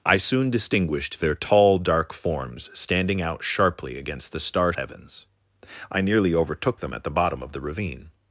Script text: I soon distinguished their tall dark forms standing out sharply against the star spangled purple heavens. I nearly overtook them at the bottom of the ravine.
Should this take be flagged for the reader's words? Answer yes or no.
yes